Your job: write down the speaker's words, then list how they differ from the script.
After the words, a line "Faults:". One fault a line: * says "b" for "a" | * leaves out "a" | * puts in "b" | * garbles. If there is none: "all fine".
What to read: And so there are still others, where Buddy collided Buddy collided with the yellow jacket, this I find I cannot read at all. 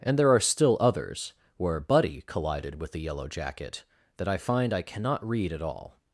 And there are still others, where Buddy collided with the yellow jacket, that I find I cannot read at all.
Faults:
* leaves out "so"
* leaves out "Buddy collided"
* says "that" for "this"